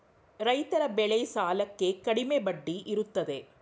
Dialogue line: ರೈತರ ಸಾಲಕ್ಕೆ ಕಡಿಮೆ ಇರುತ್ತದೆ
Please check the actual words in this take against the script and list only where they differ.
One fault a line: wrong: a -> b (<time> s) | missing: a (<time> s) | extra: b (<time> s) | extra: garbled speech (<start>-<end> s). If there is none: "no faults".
extra: ಬೆಳೆ (0.9 s)
extra: ಬಡ್ಡಿ (2.4 s)